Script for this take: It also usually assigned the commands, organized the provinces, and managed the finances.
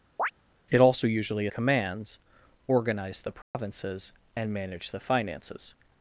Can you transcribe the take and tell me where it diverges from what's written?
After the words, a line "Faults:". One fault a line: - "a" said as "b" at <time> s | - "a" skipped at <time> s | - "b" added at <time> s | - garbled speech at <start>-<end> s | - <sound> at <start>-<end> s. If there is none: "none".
It also usually commands, organized the provinces, and managed the finances.
Faults:
- chirp at 0.2-0.3 s
- "assigned the" skipped at 1.5 s
- dropout at 3.4-3.5 s